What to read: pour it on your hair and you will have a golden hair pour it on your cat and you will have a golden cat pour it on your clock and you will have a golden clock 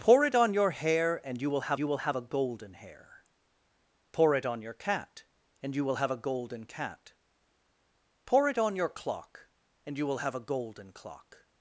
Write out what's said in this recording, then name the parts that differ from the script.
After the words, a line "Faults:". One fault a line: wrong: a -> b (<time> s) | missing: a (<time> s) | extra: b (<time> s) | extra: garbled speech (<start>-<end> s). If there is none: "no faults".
pour it on your hair and you will have you will have a golden hair pour it on your cat and you will have a golden cat pour it on your clock and you will have a golden clock
Faults:
extra: you will have (1.8 s)